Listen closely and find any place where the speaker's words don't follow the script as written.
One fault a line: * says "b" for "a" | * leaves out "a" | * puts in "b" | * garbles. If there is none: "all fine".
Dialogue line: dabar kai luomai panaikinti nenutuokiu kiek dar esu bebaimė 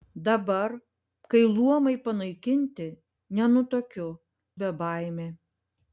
* leaves out "kiek dar esu"